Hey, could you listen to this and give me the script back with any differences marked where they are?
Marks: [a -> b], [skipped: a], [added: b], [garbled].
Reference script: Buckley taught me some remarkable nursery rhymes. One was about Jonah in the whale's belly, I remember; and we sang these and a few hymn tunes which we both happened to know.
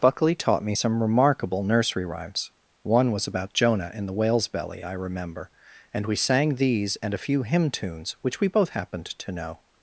Buckley taught me some remarkable nursery rhymes. One was about Jonah in the whale's belly, I remember; and we sang these and a few hymn tunes which we both happened to know.